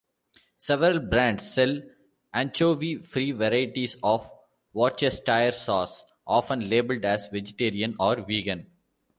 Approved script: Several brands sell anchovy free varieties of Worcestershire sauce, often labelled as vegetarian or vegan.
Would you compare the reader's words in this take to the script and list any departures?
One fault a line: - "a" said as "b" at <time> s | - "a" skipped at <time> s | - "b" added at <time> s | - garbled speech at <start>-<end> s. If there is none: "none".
none